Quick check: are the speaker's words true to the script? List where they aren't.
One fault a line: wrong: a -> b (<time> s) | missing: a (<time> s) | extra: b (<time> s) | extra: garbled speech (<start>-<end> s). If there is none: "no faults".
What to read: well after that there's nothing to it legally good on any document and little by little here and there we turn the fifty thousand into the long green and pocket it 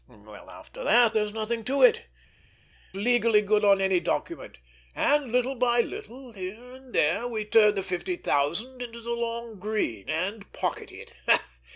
no faults